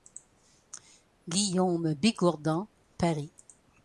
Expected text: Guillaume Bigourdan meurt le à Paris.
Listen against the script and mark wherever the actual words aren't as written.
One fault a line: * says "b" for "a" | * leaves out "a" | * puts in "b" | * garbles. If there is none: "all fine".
* leaves out "meurt le à"